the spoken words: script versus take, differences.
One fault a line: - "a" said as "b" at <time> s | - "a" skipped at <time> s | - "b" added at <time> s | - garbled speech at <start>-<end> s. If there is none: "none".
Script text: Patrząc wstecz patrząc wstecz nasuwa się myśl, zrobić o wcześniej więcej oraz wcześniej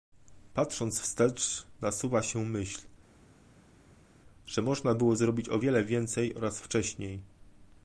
- "patrząc wstecz" skipped at 1.7 s
- "że można było" added at 4.5 s
- "wcześniej" said as "wiele" at 5.6 s